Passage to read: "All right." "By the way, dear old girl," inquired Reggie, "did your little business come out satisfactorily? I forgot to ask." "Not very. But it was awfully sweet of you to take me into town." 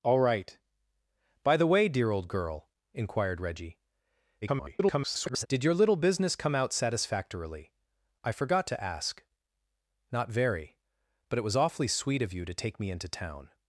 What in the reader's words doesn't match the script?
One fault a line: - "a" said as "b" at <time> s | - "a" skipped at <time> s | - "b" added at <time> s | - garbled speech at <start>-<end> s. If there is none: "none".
- garbled speech at 4.4-5.5 s